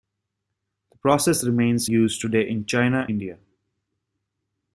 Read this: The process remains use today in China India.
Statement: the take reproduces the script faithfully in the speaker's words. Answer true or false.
true